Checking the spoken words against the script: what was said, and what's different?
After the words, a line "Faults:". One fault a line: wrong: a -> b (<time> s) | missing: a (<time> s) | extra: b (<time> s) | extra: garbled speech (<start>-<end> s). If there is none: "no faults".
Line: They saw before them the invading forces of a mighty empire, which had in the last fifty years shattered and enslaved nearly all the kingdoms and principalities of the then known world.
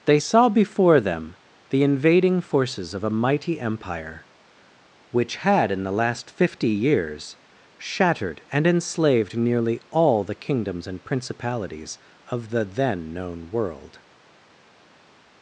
They saw before them the invading forces of a mighty empire, which had in the last fifty years shattered and enslaved nearly all the kingdoms and principalities of the then known world.
Faults:
no faults